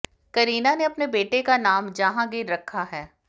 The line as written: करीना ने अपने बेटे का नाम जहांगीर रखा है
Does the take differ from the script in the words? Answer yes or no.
no